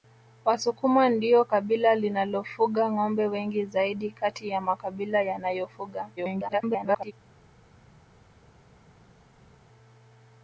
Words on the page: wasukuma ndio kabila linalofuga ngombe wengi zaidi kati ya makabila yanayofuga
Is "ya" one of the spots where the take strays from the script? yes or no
no